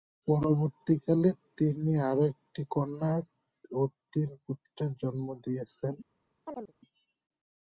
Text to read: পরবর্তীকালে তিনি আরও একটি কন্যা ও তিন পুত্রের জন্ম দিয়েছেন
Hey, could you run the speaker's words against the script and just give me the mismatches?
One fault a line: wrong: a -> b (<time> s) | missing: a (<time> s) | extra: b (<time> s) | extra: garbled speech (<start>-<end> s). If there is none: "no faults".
no faults